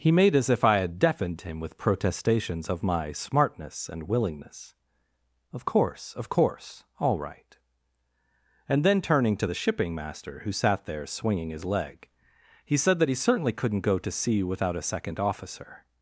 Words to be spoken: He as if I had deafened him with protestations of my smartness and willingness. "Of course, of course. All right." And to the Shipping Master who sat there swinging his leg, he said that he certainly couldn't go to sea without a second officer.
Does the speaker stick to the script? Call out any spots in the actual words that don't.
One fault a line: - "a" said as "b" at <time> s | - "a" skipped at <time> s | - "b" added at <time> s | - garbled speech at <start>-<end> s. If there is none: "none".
- "made" added at 0.1 s
- "then turning" added at 8.8 s